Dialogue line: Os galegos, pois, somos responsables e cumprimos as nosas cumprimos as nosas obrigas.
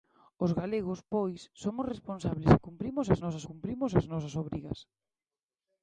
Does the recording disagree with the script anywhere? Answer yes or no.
no